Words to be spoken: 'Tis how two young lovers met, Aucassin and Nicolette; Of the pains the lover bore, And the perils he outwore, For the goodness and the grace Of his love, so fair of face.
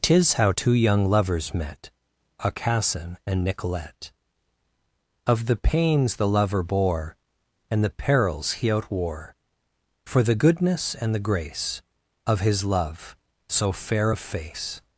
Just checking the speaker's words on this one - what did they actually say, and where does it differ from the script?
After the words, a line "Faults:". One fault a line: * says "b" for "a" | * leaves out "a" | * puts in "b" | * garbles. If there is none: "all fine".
'Tis how two young lovers met, Aucassin and Nicolette; Of the pains the lover bore, And the perils he outwore, For the goodness and the grace Of his love, so fair of face.
Faults:
all fine